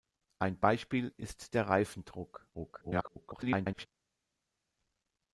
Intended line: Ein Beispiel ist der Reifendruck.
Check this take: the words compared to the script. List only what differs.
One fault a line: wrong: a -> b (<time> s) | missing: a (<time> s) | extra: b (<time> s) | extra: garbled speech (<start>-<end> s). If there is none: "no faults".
extra: garbled speech (2.5-3.9 s)